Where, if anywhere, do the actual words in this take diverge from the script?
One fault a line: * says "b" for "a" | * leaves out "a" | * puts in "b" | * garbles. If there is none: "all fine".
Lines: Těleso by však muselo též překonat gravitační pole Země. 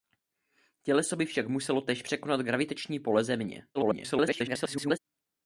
* garbles